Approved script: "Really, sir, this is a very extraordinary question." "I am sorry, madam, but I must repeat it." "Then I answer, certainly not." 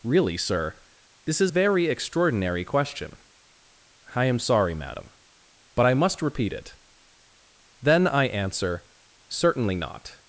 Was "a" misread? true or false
true